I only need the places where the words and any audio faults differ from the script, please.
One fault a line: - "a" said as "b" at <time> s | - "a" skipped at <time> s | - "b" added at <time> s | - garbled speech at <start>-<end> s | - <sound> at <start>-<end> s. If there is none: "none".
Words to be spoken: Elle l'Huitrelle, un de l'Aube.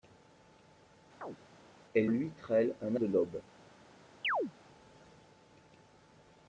- chirp at 1.2-1.4 s
- chirp at 4.2-4.5 s